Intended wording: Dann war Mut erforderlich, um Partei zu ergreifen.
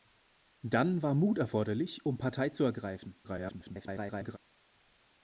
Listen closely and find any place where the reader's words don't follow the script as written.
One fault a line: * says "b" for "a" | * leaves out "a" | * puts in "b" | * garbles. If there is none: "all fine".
* garbles